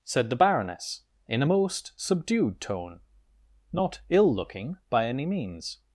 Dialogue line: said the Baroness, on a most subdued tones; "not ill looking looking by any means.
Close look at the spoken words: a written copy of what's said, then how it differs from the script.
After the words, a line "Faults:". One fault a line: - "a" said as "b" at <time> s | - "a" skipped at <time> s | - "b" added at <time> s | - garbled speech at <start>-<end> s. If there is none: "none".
said the Baroness, in a most subdued tone; "not ill looking by any means.
Faults:
- "on" said as "in" at 1.3 s
- "tones" said as "tone" at 2.6 s
- "looking" skipped at 4.8 s